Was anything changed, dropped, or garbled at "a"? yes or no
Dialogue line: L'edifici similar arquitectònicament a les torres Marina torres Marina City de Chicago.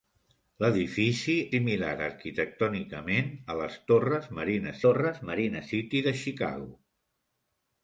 no